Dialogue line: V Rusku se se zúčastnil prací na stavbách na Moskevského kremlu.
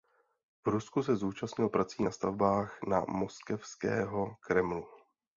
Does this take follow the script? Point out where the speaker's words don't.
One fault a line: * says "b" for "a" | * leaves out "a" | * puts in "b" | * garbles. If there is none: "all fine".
* leaves out "se"